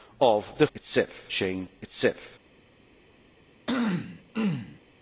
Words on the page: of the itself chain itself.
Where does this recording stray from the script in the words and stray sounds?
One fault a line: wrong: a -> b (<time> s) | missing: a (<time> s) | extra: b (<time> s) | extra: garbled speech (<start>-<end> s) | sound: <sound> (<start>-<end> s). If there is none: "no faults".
sound: throat clearing (3.7-4.8 s)